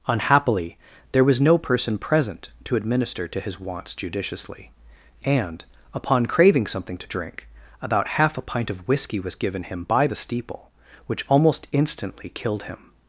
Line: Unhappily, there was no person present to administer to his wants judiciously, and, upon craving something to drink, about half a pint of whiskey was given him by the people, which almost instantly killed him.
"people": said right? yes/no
no